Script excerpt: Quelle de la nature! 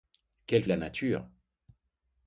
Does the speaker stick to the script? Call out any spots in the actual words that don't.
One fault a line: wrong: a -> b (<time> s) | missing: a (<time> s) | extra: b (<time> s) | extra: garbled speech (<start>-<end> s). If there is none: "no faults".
no faults